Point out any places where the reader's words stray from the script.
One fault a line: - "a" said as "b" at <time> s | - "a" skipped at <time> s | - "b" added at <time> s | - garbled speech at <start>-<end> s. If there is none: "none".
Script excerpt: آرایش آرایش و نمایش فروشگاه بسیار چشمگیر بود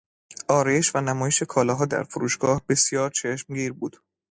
- "آرایش" skipped at 0.9 s
- "کالاها در" added at 1.4 s